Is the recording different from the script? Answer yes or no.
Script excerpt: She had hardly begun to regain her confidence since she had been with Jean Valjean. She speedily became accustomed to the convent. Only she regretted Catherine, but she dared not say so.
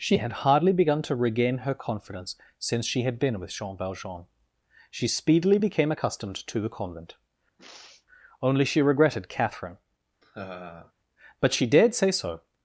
yes